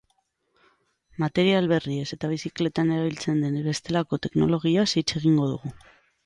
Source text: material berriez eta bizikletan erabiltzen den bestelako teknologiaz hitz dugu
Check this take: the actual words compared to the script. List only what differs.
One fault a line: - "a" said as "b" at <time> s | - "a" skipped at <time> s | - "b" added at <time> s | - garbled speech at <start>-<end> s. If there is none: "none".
- "egingo" added at 5.2 s